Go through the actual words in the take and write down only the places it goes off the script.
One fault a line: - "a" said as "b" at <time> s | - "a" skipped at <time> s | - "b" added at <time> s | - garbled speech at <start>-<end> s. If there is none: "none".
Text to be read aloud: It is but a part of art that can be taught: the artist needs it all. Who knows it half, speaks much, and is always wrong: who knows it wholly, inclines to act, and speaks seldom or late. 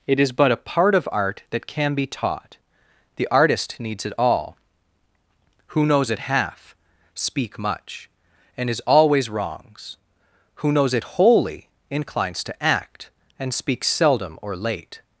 - "speaks" said as "speak" at 7.1 s
- "wrong" said as "wrongs" at 9.3 s